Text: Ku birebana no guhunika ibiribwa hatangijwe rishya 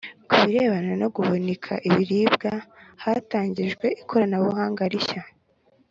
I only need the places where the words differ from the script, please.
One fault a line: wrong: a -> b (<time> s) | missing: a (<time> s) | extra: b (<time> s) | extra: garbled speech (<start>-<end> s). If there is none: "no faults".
extra: ikoranabuhanga (4.0 s)